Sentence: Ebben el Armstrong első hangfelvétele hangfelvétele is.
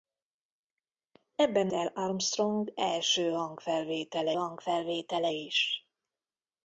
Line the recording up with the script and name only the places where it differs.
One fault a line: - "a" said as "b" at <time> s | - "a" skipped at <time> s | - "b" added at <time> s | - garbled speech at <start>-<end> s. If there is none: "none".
none